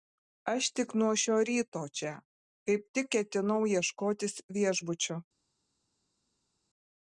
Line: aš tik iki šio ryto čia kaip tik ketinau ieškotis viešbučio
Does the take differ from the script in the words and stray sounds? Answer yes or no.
yes